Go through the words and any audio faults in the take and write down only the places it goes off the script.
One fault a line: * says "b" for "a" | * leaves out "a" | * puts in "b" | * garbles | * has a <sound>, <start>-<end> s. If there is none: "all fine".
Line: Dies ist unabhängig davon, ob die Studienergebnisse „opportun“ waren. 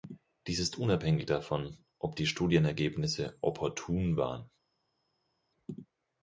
all fine